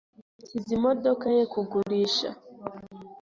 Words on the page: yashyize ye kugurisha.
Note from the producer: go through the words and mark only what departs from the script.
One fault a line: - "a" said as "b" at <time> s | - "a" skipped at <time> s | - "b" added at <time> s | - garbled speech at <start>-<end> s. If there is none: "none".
- "imodoka" added at 0.8 s